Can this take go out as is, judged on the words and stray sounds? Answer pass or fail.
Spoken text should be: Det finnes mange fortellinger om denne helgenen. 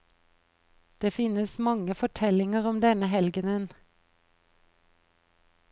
pass